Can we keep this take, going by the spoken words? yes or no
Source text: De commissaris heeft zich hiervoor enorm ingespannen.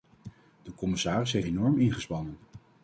no